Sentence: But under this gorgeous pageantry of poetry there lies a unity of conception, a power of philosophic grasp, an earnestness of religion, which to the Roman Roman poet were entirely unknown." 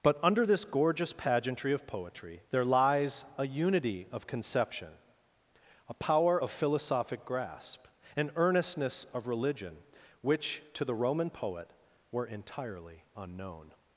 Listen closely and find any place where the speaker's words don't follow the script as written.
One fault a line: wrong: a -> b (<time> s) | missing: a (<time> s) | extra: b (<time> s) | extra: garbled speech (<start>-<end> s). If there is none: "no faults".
missing: Roman (11.3 s)